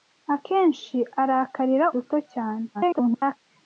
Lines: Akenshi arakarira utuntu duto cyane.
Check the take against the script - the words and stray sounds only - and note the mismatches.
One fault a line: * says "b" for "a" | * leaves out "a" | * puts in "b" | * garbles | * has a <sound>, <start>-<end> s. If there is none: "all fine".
* leaves out "utuntu"
* garbles